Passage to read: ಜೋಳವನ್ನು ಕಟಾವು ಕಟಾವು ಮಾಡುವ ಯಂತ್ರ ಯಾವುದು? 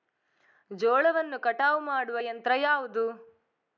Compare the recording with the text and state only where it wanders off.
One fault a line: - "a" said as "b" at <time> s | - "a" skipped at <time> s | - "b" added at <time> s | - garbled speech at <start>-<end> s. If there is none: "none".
- "ಕಟಾವು" skipped at 1.8 s